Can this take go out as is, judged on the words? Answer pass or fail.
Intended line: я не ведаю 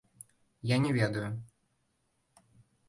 pass